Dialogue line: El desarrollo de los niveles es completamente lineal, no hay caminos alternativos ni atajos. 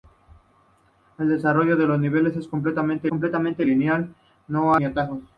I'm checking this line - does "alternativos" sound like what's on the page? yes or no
no